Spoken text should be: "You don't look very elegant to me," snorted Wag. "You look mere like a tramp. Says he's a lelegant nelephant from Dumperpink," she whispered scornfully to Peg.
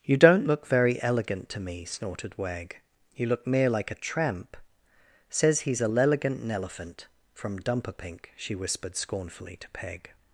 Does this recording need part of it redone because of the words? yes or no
no